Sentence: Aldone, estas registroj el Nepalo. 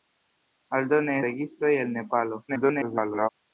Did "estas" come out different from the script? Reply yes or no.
yes